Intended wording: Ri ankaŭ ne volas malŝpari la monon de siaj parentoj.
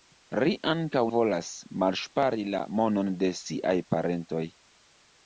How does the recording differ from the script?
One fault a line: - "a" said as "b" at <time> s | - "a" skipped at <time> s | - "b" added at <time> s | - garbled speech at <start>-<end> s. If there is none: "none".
- "ne" skipped at 1.0 s